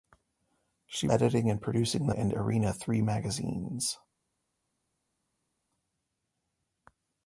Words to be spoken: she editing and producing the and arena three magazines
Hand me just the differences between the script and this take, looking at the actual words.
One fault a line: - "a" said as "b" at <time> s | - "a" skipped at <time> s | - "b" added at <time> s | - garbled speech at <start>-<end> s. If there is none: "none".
none